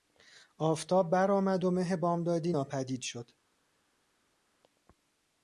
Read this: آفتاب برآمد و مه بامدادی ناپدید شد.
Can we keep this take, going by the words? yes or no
yes